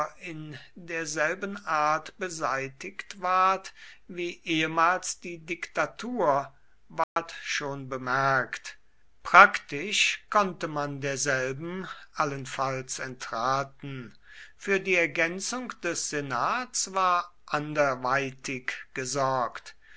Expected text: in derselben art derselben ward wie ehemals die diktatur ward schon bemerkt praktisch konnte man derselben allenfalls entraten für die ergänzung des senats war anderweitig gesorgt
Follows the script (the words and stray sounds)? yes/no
no